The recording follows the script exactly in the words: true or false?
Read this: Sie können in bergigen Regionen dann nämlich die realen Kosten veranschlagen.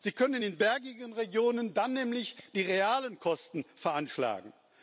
true